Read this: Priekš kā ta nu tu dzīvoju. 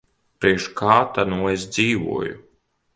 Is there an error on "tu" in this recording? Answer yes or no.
yes